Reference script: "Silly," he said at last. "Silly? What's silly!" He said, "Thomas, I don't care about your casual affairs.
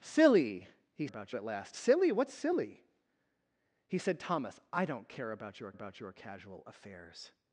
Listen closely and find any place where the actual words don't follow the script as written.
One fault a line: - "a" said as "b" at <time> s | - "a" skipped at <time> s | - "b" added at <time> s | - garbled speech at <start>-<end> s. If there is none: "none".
- "said" said as "about" at 1.0 s
- "about your" added at 5.7 s